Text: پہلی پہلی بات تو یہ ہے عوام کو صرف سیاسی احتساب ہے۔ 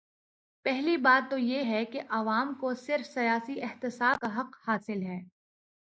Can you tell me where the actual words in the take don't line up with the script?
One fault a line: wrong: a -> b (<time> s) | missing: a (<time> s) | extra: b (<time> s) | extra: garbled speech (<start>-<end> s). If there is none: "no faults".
missing: پہلی (1.0 s)
extra: کہ (1.8 s)
extra: کا حق حاصل (4.2 s)